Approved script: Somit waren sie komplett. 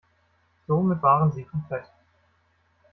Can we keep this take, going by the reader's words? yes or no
yes